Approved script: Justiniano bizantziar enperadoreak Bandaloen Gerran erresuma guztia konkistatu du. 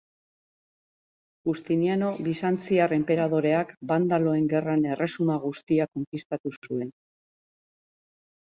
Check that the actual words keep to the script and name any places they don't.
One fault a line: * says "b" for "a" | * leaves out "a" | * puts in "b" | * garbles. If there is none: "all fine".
* says "zuen" for "du"